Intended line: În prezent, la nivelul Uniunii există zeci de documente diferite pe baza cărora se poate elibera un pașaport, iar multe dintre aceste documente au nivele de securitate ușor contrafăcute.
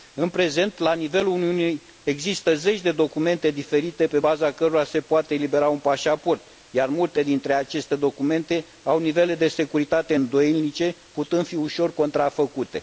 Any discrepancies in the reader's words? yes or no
yes